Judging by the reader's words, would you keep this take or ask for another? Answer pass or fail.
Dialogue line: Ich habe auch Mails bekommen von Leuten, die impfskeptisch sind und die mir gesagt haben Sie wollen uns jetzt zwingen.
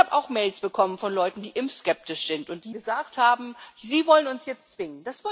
fail